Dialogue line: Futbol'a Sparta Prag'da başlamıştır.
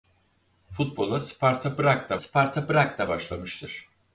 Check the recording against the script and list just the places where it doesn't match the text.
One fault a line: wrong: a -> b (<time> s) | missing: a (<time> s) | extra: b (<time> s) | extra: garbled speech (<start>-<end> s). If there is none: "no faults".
extra: Sparta Prag'da (2.2 s)